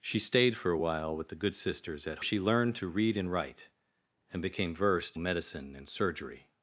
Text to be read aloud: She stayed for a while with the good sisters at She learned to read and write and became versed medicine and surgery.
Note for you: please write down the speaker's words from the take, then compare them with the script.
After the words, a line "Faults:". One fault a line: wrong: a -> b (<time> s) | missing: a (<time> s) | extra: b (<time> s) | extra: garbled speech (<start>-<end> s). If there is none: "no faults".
She stayed for a while with the good sisters at She learned to read and write and became versed medicine and surgery.
Faults:
no faults